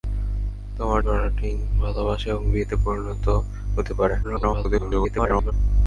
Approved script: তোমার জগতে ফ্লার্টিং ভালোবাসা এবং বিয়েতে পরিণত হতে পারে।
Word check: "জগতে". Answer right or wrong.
wrong